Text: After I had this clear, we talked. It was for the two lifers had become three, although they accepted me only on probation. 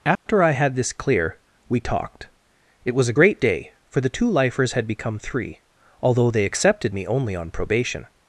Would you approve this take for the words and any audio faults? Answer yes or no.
no